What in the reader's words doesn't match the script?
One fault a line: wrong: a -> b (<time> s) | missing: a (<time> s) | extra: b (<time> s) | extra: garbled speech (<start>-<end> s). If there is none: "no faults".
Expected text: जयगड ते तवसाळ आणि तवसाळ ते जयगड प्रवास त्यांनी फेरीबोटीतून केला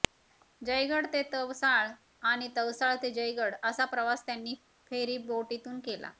extra: असा (3.6 s)